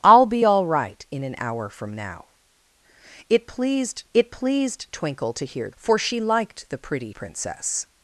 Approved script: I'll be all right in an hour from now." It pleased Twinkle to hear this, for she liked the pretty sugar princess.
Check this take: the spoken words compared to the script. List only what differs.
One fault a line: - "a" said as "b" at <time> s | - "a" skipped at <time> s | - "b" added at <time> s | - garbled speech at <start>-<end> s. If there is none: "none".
- "it pleased" added at 4.1 s
- "this" skipped at 5.7 s
- "sugar" skipped at 7.1 s